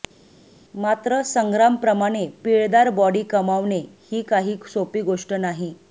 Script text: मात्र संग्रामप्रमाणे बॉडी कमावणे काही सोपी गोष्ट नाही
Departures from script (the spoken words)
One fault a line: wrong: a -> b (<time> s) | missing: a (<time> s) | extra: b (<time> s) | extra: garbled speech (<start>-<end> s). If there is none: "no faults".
extra: पिळदार (2.4 s)
extra: ही (4.1 s)